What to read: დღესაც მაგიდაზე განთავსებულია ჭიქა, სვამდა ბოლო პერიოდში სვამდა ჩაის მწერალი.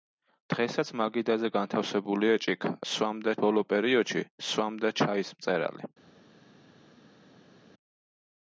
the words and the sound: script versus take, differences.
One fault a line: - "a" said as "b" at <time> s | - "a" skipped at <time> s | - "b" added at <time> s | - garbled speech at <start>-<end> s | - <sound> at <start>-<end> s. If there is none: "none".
none